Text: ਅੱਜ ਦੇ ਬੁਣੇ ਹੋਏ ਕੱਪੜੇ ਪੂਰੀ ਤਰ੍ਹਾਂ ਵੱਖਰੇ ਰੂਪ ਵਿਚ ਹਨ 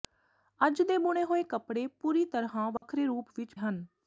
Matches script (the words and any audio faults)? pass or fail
fail